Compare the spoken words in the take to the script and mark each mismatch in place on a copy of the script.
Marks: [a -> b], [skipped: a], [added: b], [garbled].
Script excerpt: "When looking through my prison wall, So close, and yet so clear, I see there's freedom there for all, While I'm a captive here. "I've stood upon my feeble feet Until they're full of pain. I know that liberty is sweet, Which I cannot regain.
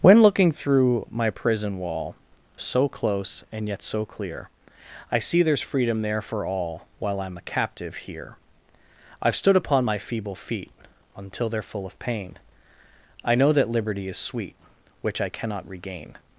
"When looking through my prison wall, So close, and yet so clear, I see there's freedom there for all, While I'm a captive here. "I've stood upon my feeble feet Until they're full of pain. I know that liberty is sweet, Which I cannot regain.